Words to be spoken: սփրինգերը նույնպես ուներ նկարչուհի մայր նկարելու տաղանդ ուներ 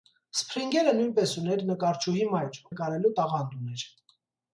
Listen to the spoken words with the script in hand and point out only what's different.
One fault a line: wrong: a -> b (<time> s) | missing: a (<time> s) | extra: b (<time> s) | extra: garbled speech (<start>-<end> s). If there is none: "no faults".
no faults